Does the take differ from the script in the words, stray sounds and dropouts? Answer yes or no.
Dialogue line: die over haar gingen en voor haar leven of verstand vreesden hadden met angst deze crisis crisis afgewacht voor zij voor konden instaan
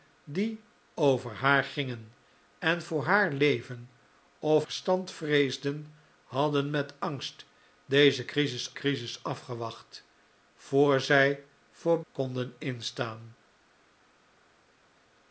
no